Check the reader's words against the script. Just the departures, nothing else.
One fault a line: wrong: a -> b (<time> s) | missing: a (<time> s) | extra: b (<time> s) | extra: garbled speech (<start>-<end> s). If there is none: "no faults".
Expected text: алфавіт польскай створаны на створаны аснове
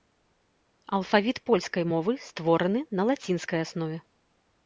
extra: мовы (1.9 s)
wrong: створаны -> лацінскай (3.1 s)